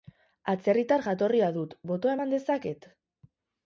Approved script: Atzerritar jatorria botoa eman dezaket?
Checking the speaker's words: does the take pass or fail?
fail